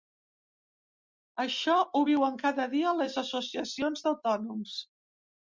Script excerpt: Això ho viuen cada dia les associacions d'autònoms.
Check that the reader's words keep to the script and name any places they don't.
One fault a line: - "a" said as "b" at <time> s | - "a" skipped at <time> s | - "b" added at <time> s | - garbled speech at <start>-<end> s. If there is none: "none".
none